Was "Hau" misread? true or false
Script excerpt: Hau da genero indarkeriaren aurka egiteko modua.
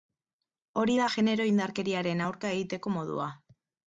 true